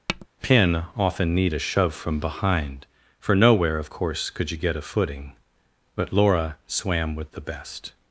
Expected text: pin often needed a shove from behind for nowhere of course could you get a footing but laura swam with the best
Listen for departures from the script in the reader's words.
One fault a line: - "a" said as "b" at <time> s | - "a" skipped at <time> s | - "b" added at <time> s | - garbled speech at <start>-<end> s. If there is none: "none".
- "needed" said as "need" at 1.3 s